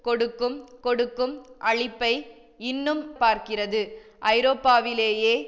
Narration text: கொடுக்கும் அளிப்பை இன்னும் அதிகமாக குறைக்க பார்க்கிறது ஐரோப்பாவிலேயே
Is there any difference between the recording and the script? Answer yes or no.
yes